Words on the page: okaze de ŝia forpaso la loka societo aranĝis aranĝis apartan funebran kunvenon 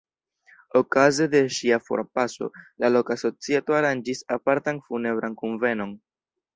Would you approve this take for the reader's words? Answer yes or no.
no